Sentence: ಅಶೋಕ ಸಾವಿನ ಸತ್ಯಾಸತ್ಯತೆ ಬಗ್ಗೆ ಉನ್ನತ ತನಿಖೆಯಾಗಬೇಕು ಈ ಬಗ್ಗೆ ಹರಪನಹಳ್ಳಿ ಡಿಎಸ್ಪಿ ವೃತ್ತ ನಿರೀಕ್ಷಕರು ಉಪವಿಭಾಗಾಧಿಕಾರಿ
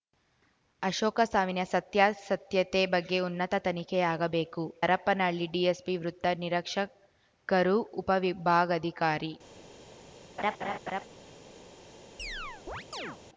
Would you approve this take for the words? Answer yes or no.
no